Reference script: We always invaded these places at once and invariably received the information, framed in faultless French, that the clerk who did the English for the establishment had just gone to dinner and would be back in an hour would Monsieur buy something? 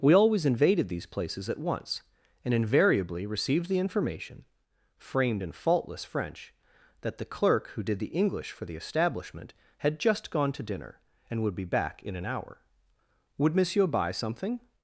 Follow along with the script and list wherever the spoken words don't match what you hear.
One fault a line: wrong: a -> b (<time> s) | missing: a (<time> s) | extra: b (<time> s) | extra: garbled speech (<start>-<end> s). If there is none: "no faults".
no faults